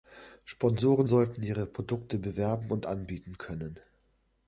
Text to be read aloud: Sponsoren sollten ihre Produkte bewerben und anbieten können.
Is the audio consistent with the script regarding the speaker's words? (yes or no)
yes